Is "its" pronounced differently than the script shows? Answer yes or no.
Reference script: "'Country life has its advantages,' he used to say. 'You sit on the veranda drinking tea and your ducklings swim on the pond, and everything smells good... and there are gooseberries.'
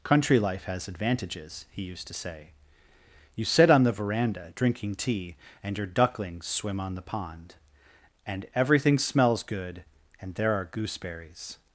yes